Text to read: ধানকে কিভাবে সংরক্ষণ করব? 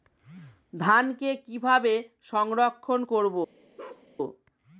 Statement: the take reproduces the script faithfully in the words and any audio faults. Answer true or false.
false